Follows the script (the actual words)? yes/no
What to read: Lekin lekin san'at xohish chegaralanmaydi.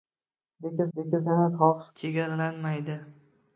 yes